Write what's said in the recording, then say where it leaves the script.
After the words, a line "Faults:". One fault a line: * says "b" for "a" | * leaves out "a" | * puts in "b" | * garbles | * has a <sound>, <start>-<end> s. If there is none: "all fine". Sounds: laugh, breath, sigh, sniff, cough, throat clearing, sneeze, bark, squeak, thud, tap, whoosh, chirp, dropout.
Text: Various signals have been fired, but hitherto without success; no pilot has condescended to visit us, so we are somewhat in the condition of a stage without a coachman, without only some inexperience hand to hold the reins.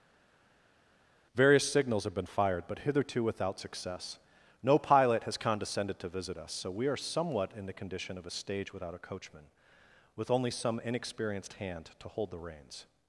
Various signals have been fired, but hitherto without success; no pilot has condescended to visit us, so we are somewhat in the condition of a stage without a coachman, with only some inexperienced hand to hold the reins.
Faults:
* says "with" for "without"
* says "inexperienced" for "inexperience"